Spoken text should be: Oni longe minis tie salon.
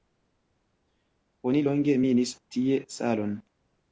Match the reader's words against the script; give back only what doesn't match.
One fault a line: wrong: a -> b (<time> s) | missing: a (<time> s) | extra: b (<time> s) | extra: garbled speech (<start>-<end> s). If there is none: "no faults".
no faults